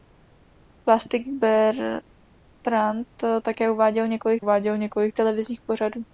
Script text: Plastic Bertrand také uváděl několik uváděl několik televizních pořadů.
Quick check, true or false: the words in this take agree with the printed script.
true